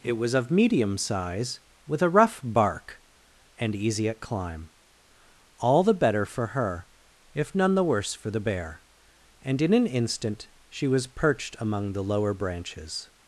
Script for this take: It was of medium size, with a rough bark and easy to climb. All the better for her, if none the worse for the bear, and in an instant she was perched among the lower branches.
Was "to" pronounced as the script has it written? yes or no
no